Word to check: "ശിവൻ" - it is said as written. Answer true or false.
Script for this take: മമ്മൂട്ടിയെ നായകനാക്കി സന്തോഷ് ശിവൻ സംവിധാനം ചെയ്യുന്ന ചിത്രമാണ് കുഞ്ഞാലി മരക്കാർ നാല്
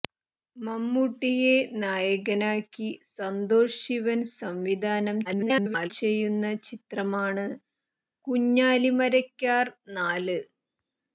true